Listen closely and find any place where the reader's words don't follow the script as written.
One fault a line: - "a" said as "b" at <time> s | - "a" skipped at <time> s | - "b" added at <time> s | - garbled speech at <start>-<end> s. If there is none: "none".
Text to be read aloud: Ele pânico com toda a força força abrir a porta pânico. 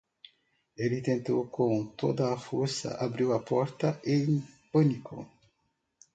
- "pânico" said as "tentou" at 1.0 s
- "força" skipped at 3.0 s
- "em" added at 4.1 s